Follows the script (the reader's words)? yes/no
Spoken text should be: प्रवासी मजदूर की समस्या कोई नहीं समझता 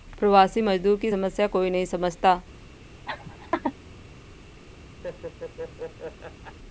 yes